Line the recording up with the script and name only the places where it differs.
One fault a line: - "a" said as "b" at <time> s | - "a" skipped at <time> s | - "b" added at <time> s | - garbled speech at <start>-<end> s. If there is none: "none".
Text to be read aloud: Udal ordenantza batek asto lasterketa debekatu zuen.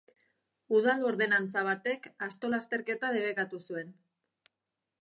none